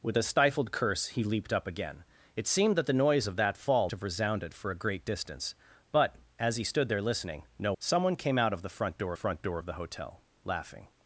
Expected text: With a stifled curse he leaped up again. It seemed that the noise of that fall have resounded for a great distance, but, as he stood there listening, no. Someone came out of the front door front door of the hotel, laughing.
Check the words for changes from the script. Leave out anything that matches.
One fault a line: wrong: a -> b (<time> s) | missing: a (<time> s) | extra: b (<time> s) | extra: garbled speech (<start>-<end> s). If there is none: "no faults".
no faults